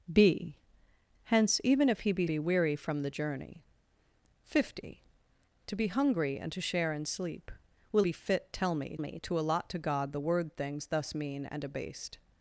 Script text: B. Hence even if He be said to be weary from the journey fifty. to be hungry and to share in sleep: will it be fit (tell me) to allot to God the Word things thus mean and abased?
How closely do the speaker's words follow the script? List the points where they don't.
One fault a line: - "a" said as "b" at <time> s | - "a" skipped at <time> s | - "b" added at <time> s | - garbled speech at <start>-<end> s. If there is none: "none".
- "said to" skipped at 2.3 s
- "it" skipped at 8.1 s
- "me" added at 9.0 s